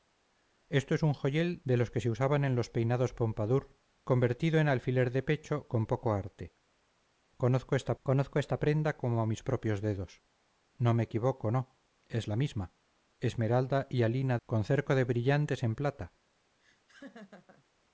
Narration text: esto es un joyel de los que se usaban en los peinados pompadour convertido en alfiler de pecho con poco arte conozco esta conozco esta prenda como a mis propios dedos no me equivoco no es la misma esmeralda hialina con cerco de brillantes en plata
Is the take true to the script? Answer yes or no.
yes